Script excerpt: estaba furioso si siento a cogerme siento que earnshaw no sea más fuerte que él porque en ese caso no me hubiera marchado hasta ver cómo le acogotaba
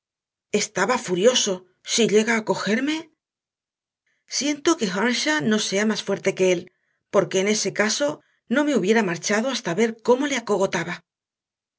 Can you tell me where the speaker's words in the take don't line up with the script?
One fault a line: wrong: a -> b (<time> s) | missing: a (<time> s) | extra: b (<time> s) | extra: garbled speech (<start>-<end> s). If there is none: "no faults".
wrong: siento -> llega (2.1 s)